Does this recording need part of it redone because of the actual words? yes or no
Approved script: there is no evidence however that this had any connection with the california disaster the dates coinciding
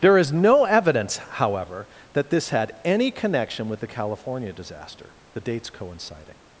no